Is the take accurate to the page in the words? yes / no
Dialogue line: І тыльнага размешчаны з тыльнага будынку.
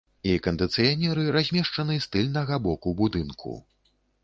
no